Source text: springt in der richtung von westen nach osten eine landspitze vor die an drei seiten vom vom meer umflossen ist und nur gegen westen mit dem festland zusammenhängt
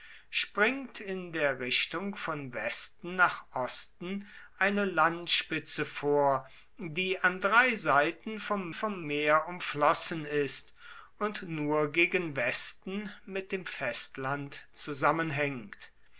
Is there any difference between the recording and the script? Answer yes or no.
no